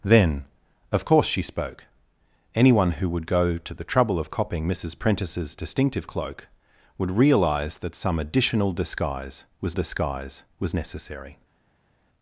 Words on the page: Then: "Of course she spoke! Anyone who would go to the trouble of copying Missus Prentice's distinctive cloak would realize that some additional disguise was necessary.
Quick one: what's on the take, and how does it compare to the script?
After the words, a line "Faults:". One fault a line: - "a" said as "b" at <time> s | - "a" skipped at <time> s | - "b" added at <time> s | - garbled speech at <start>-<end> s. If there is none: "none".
Then: "Of course she spoke! Anyone who would go to the trouble of copying Missus Prentice's distinctive cloak would realize that some additional disguise was disguise was necessary.
Faults:
- "disguise was" added at 9.7 s